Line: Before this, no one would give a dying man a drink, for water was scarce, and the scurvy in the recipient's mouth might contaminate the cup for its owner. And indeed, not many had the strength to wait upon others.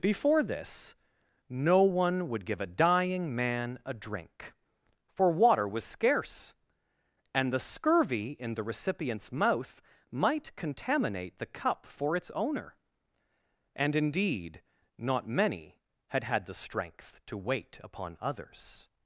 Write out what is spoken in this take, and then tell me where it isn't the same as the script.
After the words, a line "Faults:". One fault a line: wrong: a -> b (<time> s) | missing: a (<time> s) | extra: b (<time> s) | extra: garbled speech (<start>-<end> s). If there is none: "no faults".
Before this, no one would give a dying man a drink, for water was scarce, and the scurvy in the recipient's mouth might contaminate the cup for its owner. And indeed, not many had had the strength to wait upon others.
Faults:
extra: had (16.2 s)